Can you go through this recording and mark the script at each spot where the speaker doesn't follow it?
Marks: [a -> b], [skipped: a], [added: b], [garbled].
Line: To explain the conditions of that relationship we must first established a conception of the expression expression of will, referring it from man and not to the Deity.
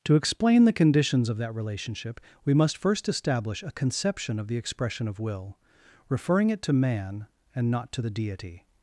To explain the conditions of that relationship we must first [established -> establish] a conception of the expression [skipped: expression] of will, referring it [from -> to] man and not to the Deity.